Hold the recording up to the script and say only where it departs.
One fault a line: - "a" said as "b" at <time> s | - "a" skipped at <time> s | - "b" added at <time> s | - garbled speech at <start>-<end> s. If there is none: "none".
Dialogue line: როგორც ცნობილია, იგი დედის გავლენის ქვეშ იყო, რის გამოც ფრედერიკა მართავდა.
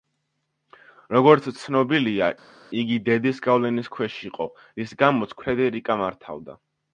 none